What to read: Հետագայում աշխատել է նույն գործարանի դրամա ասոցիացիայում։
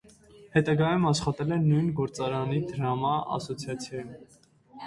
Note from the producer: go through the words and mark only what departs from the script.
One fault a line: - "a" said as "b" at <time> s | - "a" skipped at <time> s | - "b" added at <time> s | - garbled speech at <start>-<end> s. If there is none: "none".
none